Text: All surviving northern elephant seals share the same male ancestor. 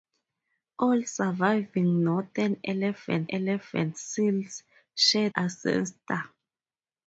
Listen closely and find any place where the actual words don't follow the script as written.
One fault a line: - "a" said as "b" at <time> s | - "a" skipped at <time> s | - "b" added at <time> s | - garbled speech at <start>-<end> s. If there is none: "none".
- "elephant" added at 3.3 s
- "the same male" skipped at 5.3 s